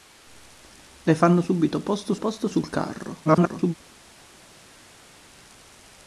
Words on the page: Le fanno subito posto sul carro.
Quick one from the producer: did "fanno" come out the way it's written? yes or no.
yes